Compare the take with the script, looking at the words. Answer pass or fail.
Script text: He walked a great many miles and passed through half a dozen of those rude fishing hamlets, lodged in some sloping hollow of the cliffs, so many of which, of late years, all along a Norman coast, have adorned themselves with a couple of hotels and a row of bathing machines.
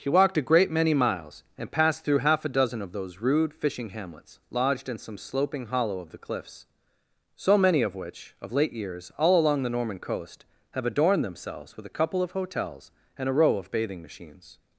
fail